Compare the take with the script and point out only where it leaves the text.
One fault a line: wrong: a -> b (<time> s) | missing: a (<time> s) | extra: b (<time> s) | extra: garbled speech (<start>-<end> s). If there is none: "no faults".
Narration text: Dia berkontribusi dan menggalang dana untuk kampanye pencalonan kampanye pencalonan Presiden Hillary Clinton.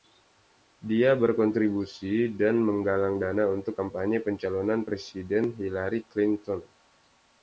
missing: kampanye pencalonan (4.9 s)